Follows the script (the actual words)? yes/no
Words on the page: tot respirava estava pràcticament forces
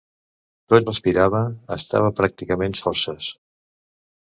yes